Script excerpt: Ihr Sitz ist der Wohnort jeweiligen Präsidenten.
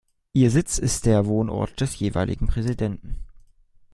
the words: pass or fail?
fail